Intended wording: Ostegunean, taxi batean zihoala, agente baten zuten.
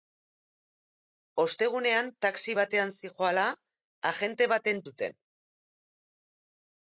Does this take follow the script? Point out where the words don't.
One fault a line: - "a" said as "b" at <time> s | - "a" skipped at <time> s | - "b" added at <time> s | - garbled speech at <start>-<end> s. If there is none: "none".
none